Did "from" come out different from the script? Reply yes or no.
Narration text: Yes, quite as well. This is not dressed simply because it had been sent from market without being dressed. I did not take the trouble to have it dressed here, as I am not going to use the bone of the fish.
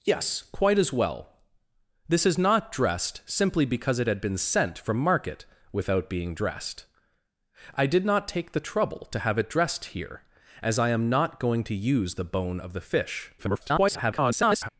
no